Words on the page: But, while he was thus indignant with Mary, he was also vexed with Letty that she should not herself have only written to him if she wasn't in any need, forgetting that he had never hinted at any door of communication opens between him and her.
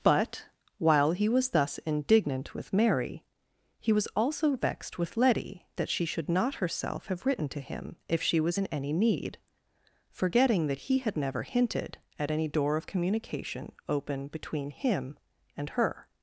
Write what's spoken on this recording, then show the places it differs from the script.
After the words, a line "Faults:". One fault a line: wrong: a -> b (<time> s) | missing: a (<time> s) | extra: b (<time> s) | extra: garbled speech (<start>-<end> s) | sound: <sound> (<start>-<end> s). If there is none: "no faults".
But, while he was thus indignant with Mary, he was also vexed with Letty that she should not herself have written to him if she was in any need, forgetting that he had never hinted at any door of communication open between him and her.
Faults:
missing: only (7.2 s)
wrong: wasn't -> was (8.4 s)
wrong: opens -> open (13.9 s)